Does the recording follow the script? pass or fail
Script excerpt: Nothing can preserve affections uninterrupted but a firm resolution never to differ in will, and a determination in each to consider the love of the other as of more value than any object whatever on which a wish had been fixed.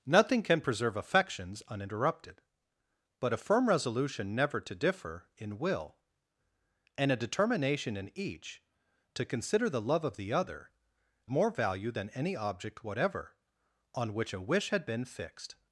fail